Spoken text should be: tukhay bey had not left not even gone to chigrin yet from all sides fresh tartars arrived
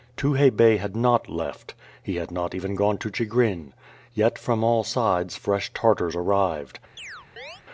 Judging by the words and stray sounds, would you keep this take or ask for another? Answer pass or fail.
fail